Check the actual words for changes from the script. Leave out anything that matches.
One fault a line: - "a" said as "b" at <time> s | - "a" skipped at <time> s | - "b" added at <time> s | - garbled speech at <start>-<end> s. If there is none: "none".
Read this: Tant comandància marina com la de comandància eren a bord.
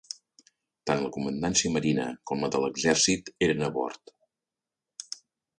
- "la" added at 1.0 s
- "comandància" said as "l'exèrcit" at 2.7 s